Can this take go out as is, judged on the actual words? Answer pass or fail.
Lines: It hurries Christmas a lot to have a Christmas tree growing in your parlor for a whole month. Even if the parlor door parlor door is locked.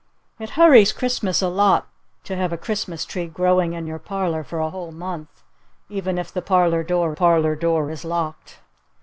pass